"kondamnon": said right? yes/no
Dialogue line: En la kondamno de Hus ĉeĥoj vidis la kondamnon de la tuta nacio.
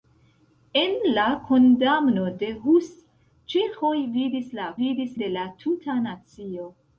no